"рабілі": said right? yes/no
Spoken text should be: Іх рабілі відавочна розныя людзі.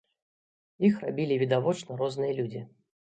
yes